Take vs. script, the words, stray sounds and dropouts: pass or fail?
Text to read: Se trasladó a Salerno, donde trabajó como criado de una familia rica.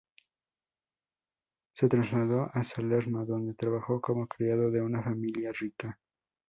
pass